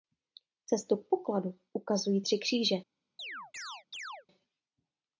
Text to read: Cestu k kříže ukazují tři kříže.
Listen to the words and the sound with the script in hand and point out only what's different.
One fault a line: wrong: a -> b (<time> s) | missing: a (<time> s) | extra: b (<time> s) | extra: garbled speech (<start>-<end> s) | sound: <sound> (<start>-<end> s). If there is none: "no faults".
wrong: kříže -> pokladu (1.1 s)
sound: chirp (3.2-4.3 s)